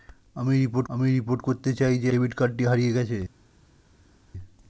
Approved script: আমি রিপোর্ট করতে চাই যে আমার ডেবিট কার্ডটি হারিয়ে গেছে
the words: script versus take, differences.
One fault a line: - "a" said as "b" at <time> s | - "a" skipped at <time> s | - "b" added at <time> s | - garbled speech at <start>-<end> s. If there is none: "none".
- "আমি রিপোর্ট" added at 0.9 s
- "আমার" skipped at 2.1 s